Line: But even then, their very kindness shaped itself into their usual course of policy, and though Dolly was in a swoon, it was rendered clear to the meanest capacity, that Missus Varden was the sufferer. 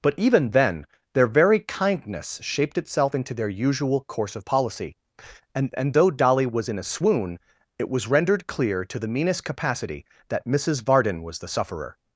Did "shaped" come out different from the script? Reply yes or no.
no